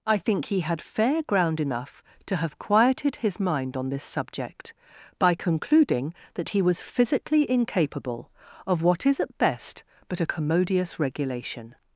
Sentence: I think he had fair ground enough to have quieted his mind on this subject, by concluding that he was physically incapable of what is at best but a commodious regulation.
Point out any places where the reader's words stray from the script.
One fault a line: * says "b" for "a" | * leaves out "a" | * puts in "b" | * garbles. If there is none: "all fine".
all fine